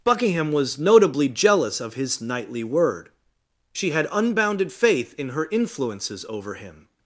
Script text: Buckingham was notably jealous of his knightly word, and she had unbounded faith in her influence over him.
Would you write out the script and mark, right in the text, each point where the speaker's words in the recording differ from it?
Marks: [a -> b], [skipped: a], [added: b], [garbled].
Buckingham was notably jealous of his knightly word, [skipped: and] she had unbounded faith in her [influence -> influences] over him.